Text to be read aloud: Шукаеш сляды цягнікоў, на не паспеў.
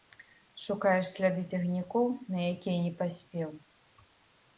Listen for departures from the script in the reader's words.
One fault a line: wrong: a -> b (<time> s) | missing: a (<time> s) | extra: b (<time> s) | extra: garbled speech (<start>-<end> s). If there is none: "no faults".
extra: якія (2.5 s)